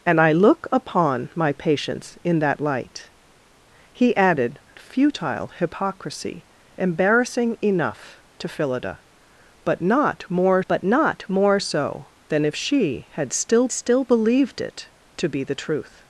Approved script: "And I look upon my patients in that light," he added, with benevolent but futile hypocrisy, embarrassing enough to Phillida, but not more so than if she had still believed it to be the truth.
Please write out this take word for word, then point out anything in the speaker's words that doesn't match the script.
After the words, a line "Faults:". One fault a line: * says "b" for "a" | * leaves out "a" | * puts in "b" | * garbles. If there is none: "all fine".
"And I look upon my patients in that light," he added, futile hypocrisy, embarrassing enough to Phillida, but not more but not more so than if she had still still believed it to be the truth.
Faults:
* leaves out "with benevolent but"
* puts in "but not more"
* puts in "still"